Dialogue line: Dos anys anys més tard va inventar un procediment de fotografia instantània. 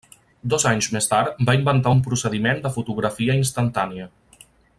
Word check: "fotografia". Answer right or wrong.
right